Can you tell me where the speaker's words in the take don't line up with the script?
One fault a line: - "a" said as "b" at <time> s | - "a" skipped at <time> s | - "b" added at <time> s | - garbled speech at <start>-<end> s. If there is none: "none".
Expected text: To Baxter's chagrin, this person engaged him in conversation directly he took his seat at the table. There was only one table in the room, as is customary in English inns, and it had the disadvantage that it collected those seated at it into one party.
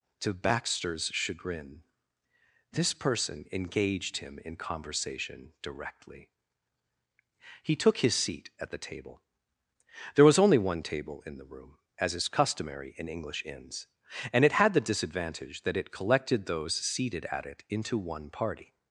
none